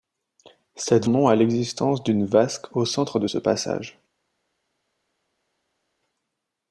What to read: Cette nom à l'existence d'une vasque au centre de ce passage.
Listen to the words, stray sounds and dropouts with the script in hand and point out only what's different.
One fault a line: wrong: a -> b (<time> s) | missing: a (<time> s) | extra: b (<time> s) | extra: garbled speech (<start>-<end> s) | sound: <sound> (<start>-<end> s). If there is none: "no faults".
no faults